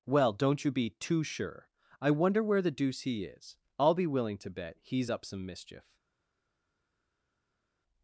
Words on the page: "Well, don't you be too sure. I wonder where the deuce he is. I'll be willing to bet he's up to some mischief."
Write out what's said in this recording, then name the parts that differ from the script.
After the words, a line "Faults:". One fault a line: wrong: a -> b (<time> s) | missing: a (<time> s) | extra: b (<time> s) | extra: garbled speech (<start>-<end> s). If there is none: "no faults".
"Well, don't you be too sure. I wonder where the deuce he is. I'll be willing to bet he's up some mischief."
Faults:
missing: to (5.2 s)